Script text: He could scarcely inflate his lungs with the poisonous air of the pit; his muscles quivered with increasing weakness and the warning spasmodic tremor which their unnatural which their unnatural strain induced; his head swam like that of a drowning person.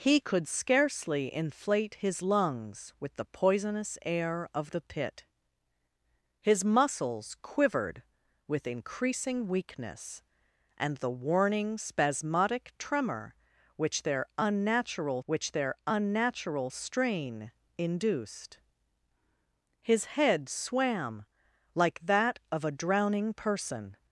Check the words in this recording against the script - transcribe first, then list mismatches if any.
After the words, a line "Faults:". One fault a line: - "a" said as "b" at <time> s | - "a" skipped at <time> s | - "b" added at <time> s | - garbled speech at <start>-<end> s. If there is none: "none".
He could scarcely inflate his lungs with the poisonous air of the pit; his muscles quivered with increasing weakness and the warning spasmodic tremor which their unnatural which their unnatural strain induced; his head swam like that of a drowning person.
Faults:
none